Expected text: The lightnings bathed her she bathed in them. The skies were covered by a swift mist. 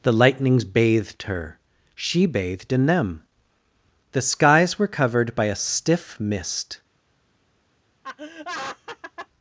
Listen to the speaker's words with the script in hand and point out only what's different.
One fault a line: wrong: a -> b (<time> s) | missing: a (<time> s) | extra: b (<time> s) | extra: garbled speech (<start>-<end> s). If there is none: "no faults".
wrong: swift -> stiff (5.5 s)